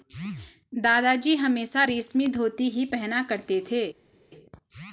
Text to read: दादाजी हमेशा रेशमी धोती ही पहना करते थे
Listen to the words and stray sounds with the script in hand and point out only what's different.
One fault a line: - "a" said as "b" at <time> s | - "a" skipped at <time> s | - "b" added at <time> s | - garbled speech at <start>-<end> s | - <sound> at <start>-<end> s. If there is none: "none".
none